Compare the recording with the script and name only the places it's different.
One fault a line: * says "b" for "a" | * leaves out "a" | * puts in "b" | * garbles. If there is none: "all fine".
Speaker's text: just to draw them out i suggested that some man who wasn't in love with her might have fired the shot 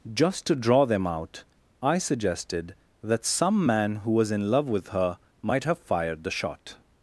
* says "was" for "wasn't"